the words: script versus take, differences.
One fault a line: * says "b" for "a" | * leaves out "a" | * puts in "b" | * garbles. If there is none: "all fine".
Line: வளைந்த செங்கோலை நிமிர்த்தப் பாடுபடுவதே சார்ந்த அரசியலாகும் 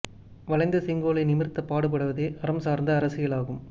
* puts in "அறம்"